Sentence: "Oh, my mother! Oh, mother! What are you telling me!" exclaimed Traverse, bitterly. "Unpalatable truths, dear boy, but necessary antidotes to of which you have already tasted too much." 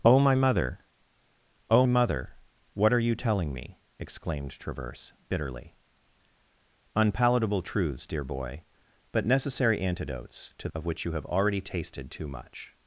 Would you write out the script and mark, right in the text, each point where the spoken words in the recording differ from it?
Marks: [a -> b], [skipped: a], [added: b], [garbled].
"Oh, my mother! Oh, mother! What are you telling me!" exclaimed Traverse, bitterly. "Unpalatable truths, dear boy, but necessary antidotes to of which you have already tasted too much."